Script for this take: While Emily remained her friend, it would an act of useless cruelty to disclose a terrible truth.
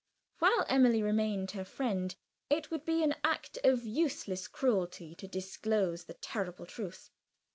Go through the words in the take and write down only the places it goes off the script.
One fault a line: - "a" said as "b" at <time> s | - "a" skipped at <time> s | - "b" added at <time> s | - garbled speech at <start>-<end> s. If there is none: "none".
- "be" added at 2.9 s
- "a" said as "the" at 6.0 s